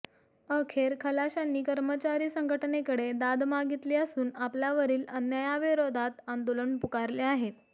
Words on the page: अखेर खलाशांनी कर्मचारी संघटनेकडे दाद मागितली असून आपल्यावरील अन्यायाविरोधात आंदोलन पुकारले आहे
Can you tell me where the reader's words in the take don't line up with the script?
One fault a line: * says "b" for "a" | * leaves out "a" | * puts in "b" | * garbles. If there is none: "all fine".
all fine